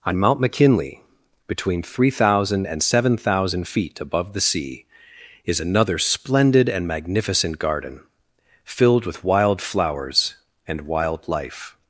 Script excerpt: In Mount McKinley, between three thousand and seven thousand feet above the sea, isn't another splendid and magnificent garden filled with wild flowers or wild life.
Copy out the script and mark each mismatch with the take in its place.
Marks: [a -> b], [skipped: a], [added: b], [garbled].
[In -> On] Mount McKinley, between three thousand and seven thousand feet above the sea, [isn't -> is] another splendid and magnificent garden filled with wild flowers [or -> and] wild life.